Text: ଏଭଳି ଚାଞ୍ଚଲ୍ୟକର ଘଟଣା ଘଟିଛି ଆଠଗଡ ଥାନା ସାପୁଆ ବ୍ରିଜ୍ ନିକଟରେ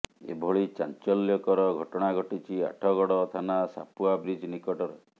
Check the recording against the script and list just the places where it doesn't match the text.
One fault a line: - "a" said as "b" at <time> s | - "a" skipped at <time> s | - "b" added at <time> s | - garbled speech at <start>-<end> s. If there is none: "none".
none